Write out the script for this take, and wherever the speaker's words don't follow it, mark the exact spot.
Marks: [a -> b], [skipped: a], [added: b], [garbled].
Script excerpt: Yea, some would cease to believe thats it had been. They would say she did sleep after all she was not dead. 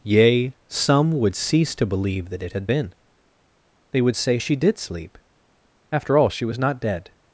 Yea, some would cease to believe [thats -> that] it had been. They would say she did sleep after all she was not dead.